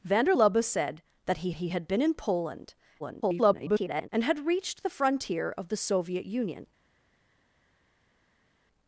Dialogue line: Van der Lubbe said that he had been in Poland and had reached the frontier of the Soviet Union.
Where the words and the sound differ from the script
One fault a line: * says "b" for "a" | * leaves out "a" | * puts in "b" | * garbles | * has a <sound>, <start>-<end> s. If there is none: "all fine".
* puts in "he"
* garbles